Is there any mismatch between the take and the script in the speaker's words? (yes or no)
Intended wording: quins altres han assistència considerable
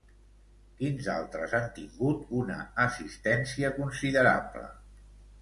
yes